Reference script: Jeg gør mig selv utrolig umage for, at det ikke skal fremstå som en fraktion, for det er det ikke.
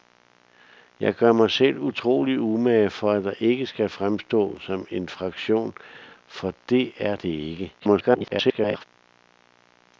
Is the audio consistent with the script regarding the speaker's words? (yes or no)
no